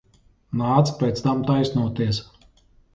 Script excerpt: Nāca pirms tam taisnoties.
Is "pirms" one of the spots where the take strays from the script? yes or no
yes